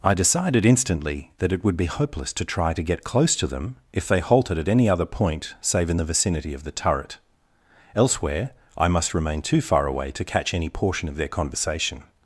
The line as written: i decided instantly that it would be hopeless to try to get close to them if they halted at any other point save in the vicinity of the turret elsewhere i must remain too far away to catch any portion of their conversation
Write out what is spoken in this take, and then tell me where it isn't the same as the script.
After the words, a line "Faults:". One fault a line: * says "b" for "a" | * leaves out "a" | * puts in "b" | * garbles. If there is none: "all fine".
i decided instantly that it would be hopeless to try to get close to them if they halted at any other point save in the vicinity of the turret elsewhere i must remain too far away to catch any portion of their conversation
Faults:
all fine